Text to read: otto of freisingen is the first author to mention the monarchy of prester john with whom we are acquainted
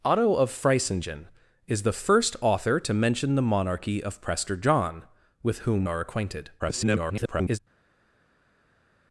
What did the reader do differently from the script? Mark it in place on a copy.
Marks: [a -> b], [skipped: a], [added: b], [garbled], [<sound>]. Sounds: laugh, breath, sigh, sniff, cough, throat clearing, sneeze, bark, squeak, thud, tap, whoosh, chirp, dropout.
otto of freisingen is the first author to mention the monarchy of prester john with whom [skipped: we] are acquainted [garbled]